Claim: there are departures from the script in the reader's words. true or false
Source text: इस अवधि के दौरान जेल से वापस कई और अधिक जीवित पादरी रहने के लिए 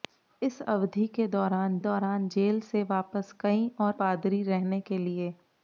true